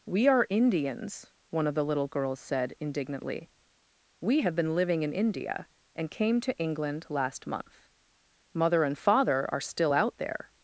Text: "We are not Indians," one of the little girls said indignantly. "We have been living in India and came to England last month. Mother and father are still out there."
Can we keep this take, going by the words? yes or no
no